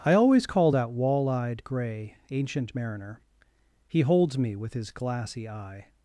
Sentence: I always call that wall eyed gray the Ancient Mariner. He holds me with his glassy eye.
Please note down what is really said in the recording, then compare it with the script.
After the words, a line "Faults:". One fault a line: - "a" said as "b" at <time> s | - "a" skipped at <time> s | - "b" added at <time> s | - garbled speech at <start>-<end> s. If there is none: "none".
I always call that wall eyed gray Ancient Mariner. He holds me with his glassy eye.
Faults:
- "the" skipped at 2.2 s